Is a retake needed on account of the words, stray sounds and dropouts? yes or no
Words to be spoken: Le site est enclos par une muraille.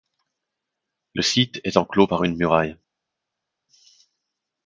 no